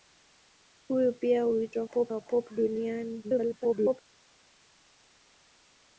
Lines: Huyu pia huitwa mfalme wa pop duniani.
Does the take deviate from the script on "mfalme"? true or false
true